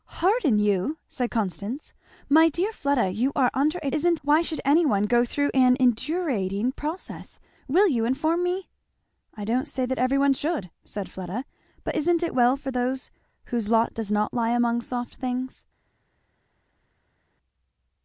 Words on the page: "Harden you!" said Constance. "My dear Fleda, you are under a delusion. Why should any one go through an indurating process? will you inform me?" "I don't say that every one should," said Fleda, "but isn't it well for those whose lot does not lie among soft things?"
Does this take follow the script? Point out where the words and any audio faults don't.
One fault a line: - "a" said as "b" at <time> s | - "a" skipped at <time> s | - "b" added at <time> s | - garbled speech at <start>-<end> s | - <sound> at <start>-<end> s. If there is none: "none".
- "delusion" said as "isn't" at 3.9 s